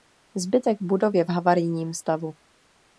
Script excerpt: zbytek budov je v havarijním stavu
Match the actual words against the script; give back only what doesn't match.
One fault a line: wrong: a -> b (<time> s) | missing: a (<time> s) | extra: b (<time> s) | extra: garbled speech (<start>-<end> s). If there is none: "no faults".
no faults